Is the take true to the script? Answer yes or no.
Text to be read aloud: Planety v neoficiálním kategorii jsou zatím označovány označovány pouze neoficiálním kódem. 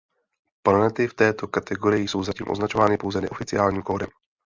no